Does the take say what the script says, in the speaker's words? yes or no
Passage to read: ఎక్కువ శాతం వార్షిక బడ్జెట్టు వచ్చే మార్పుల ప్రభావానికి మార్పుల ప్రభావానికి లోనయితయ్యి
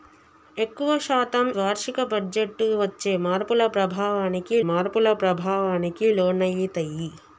yes